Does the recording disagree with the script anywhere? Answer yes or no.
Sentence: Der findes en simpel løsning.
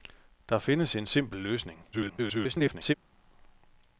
yes